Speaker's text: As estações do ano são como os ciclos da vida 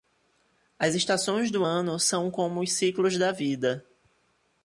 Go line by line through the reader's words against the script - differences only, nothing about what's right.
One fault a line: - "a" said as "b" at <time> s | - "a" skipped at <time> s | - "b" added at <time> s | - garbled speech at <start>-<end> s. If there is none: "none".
none